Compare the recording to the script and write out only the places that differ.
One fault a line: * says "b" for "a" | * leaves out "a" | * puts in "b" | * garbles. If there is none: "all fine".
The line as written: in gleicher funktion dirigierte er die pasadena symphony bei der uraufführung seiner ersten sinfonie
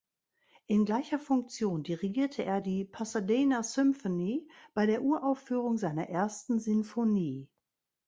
all fine